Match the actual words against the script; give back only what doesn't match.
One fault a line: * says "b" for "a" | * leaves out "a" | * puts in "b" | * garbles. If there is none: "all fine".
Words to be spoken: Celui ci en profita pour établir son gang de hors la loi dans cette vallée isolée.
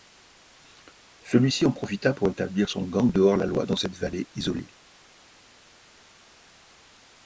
all fine